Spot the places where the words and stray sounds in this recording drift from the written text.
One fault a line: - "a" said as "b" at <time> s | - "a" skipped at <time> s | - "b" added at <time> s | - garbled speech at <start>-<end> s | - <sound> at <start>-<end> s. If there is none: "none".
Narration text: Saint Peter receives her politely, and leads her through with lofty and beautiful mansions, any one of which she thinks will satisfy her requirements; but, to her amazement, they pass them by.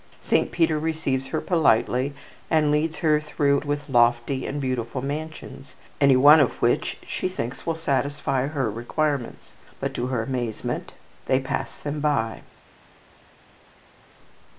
none